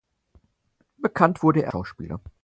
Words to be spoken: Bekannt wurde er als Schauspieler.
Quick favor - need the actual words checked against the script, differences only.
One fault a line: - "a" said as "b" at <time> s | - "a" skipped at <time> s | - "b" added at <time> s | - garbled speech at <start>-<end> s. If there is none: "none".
- "als" skipped at 1.7 s